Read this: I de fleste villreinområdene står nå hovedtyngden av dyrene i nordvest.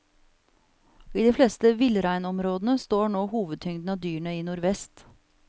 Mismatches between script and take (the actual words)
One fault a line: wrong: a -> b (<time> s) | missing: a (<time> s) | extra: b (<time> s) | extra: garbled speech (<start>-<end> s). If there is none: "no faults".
no faults